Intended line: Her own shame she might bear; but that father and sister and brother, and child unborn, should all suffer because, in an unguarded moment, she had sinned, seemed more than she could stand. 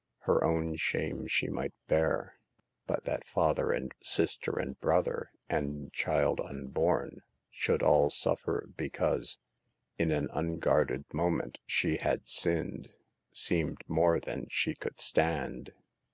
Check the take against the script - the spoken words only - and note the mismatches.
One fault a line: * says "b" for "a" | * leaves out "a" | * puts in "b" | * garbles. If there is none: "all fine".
all fine